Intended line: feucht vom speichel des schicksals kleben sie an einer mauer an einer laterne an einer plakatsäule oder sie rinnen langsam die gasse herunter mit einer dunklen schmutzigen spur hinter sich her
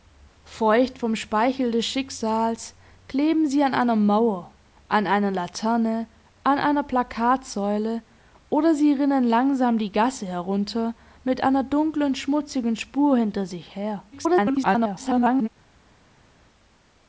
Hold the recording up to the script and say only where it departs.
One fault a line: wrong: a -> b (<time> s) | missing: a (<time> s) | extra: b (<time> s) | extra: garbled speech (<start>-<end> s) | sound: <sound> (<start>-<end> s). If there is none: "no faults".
extra: garbled speech (14.1-15.5 s)